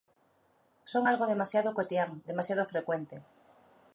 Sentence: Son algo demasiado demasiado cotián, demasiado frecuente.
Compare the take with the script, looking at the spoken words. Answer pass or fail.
fail